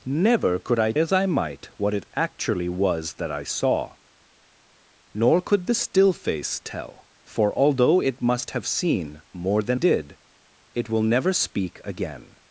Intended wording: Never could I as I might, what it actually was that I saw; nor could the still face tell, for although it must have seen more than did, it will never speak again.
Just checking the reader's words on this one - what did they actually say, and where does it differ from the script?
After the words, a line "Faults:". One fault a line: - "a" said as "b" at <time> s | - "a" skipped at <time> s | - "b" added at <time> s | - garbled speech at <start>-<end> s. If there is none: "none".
Never could I as I might, what it actually was that I saw; nor could the still face tell, for although it must have seen more than did, it will never speak again.
Faults:
none